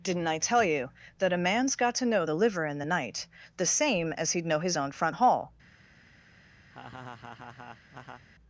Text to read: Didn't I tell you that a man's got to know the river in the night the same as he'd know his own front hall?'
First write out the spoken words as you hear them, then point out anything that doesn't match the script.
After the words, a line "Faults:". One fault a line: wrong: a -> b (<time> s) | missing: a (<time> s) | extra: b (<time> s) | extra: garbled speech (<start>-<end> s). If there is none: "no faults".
Didn't I tell you that a man's got to know the liver in the night the same as he'd know his own front hall?'
Faults:
wrong: river -> liver (2.3 s)